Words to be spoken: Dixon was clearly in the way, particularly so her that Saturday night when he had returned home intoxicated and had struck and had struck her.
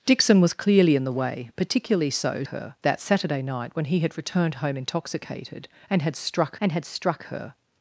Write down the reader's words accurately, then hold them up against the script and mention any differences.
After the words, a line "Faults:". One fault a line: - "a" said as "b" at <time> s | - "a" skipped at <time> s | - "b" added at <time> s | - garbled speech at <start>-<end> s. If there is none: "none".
Dixon was clearly in the way, particularly so her that Saturday night when he had returned home intoxicated and had struck and had struck her.
Faults:
none